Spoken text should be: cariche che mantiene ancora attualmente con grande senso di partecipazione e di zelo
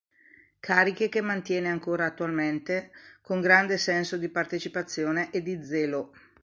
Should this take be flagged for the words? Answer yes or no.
no